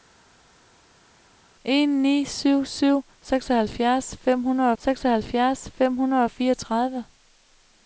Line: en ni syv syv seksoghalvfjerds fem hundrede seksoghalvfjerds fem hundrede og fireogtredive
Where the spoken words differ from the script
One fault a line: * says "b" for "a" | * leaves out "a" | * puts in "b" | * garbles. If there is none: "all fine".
all fine